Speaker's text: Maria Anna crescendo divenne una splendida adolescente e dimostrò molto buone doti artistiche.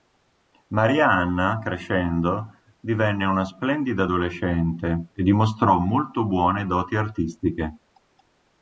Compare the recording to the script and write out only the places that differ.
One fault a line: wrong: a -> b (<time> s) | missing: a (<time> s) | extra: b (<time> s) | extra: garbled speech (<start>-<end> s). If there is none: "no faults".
no faults